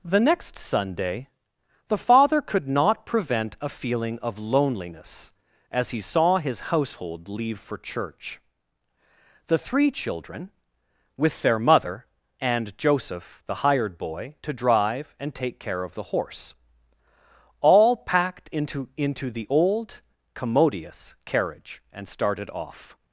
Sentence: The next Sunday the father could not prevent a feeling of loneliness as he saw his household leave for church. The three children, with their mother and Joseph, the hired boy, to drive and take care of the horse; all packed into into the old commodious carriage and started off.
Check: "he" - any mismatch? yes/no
no